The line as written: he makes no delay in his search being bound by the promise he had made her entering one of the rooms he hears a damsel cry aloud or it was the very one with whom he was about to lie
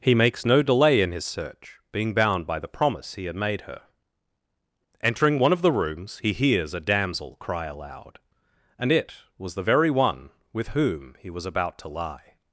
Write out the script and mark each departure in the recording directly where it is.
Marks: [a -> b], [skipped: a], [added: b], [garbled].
he makes no delay in his search being bound by the promise he had made her entering one of the rooms he hears a damsel cry aloud [or -> and] it was the very one with whom he was about to lie